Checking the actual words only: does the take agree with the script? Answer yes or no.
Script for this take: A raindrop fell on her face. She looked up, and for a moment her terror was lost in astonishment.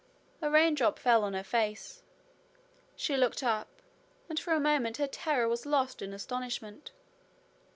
yes